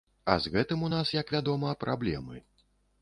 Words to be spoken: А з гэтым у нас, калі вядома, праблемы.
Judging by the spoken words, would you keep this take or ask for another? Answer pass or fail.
fail